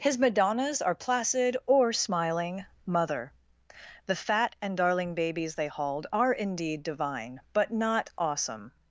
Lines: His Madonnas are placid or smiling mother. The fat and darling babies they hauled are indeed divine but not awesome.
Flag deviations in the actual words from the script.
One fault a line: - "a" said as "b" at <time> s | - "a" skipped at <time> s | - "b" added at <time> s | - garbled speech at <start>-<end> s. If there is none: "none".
none